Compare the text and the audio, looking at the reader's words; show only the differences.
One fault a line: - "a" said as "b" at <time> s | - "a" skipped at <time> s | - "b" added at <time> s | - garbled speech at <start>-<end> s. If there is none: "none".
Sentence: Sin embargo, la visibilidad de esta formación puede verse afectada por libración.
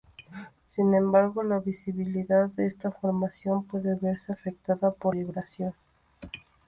none